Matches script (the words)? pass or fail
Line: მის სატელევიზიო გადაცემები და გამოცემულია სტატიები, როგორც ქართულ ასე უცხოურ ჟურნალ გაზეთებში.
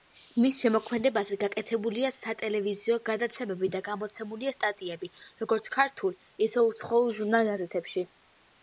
fail